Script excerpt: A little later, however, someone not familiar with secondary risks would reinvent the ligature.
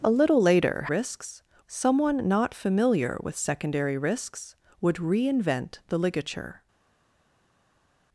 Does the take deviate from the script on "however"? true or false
true